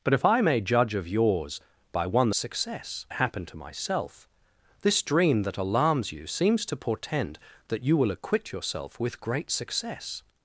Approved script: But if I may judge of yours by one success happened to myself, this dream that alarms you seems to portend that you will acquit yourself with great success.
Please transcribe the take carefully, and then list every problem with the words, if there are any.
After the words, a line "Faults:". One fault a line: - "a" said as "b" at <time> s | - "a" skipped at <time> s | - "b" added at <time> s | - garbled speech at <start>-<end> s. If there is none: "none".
But if I may judge of yours by one success happened to myself, this dream that alarms you seems to portend that you will acquit yourself with great success.
Faults:
none